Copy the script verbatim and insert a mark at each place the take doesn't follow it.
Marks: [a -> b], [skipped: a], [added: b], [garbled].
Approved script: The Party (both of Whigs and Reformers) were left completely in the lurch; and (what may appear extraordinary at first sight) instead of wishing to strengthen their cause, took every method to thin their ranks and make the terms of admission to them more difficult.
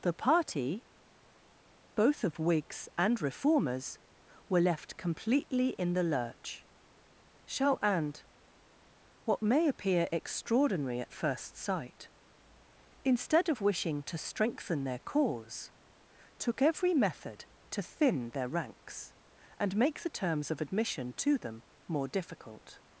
The Party (both of Whigs and Reformers) were left completely in the lurch; [added: shall] and (what may appear extraordinary at first sight) instead of wishing to strengthen their cause, took every method to thin their ranks and make the terms of admission to them more difficult.